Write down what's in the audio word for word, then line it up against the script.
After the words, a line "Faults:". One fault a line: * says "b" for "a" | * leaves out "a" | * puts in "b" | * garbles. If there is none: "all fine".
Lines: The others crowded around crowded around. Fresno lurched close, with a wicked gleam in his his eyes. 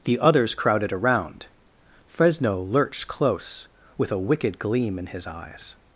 The others crowded around. Fresno lurched close, with a wicked gleam in his eyes.
Faults:
* leaves out "crowded around"
* leaves out "his"